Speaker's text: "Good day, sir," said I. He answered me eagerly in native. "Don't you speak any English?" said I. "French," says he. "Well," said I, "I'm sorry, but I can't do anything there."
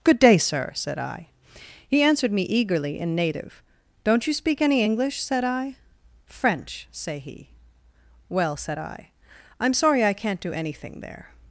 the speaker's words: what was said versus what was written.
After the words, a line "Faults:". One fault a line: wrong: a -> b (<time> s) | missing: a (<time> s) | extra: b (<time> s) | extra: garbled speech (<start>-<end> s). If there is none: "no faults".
"Good day, sir," said I. He answered me eagerly in native. "Don't you speak any English?" said I. "French," say he. "Well," said I, "I'm sorry, I can't do anything there."
Faults:
wrong: says -> say (6.9 s)
missing: but (10.0 s)